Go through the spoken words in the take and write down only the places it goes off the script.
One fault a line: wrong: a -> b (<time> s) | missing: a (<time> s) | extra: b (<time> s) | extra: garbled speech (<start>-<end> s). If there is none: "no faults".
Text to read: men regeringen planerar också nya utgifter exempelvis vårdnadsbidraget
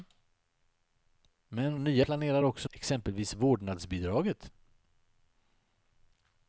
wrong: regeringen -> nya (1.8 s)
missing: nya utgifter (2.7 s)